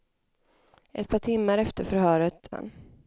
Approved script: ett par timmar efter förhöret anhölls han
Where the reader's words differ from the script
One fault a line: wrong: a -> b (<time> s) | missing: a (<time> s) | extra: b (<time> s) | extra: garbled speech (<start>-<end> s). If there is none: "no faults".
missing: anhölls (2.5 s)